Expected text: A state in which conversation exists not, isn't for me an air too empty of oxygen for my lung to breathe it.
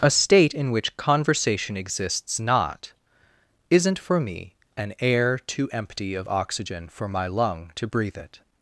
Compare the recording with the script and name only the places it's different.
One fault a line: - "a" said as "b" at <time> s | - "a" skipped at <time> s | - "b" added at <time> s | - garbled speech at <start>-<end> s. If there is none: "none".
none